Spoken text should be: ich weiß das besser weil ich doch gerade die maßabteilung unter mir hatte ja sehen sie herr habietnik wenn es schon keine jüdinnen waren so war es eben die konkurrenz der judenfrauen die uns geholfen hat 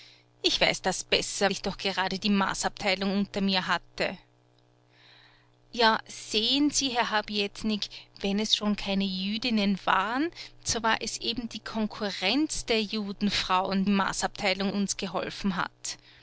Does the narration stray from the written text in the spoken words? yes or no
yes